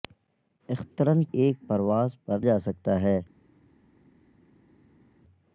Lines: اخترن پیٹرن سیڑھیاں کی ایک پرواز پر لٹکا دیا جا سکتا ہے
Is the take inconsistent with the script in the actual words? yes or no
yes